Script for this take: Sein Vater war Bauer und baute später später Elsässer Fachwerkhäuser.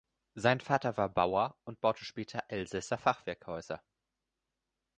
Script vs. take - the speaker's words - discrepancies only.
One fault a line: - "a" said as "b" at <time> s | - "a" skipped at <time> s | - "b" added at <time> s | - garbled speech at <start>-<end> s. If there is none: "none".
- "später" skipped at 2.5 s